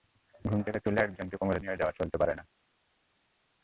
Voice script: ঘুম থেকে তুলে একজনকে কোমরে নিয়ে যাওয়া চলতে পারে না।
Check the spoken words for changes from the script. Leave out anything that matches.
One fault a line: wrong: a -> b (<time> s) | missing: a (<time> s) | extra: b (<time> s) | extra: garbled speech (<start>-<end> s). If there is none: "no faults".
no faults